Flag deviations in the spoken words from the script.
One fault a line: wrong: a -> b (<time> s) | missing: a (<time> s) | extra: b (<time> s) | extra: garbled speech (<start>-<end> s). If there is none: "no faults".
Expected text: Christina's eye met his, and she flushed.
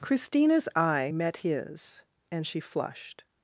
no faults